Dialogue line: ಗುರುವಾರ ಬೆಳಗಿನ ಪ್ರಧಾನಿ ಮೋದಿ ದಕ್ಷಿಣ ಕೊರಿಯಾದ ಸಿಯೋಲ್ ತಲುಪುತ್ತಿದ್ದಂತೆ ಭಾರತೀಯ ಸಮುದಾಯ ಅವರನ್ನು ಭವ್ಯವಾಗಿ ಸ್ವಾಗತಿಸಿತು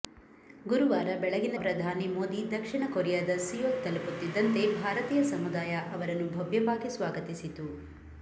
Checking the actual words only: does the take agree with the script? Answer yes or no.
yes